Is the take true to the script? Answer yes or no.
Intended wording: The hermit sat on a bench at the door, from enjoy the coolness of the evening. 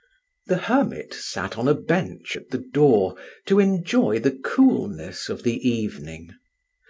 no